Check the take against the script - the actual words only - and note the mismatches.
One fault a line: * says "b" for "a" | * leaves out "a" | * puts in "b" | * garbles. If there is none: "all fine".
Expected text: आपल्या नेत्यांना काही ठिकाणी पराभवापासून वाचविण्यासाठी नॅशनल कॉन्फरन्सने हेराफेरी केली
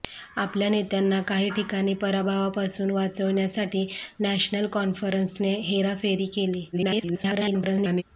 * garbles